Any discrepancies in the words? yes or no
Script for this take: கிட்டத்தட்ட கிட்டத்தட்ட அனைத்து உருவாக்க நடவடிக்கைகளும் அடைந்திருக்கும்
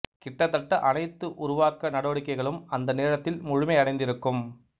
yes